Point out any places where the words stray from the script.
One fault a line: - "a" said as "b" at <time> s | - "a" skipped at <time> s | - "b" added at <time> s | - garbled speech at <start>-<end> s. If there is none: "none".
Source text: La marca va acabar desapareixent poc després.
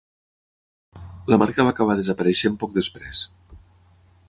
none